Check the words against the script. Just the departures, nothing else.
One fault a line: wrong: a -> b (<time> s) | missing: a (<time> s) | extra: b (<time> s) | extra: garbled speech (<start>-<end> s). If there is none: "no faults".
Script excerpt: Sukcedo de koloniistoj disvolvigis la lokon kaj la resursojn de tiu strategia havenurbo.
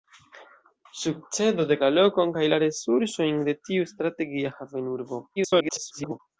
missing: koloniistoj disvolvigis (1.8 s)
extra: garbled speech (5.4-6.2 s)